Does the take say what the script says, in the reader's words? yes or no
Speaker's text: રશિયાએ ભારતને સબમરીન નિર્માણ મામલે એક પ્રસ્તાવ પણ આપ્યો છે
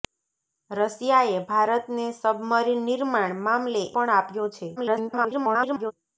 no